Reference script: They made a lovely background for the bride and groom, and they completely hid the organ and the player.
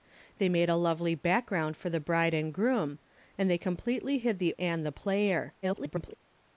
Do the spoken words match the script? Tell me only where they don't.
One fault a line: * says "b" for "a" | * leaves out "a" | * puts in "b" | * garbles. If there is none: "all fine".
* leaves out "organ"
* garbles